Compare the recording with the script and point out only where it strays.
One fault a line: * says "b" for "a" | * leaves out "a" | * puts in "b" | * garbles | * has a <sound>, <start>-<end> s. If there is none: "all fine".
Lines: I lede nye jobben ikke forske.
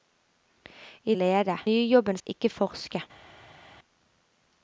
all fine